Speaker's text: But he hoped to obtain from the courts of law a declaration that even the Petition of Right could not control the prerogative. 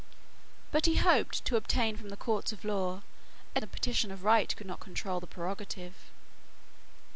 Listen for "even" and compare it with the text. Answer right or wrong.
wrong